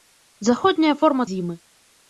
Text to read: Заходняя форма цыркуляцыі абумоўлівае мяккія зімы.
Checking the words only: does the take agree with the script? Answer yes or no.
no